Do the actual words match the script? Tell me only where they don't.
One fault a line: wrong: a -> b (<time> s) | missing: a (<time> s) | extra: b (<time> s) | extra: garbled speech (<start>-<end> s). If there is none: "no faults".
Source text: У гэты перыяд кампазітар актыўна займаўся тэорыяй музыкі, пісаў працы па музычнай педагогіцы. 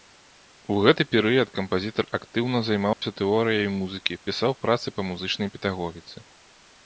no faults